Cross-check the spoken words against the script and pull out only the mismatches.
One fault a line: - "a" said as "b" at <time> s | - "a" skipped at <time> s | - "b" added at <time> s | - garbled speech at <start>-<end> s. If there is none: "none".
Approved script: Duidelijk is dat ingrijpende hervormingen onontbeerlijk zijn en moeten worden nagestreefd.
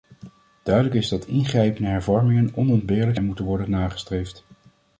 - "zijn" skipped at 3.2 s